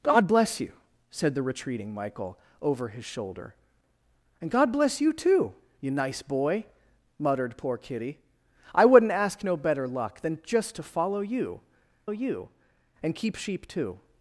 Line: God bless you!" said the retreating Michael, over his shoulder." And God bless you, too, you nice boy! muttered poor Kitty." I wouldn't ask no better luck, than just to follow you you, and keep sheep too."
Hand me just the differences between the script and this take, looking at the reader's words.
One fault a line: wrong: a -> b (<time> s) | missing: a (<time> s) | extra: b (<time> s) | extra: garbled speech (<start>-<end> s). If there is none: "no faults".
no faults